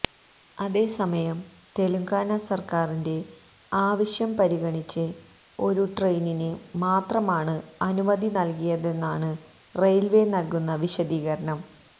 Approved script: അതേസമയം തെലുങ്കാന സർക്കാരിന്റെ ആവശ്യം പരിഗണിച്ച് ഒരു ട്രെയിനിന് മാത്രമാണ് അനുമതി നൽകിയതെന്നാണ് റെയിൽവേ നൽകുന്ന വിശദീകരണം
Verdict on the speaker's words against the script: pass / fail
pass